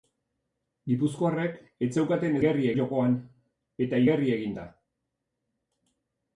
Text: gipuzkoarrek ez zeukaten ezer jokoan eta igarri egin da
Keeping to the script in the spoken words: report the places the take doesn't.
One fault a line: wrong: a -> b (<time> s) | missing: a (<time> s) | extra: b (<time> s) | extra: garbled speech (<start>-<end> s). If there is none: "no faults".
wrong: ezer -> igarri (2.4 s)